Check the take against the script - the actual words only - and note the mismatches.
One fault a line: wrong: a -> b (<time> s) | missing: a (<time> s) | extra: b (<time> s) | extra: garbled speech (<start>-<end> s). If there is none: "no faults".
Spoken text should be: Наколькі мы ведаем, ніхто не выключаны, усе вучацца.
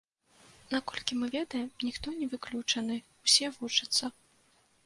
no faults